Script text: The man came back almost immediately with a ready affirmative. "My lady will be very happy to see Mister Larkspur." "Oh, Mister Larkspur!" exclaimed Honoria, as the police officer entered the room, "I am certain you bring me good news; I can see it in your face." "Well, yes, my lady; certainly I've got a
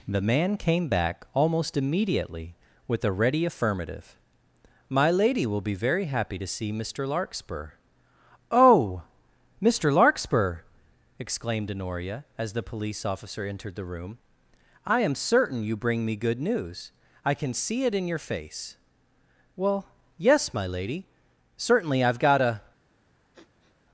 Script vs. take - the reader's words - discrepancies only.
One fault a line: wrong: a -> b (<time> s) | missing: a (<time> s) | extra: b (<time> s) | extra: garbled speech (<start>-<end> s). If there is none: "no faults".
no faults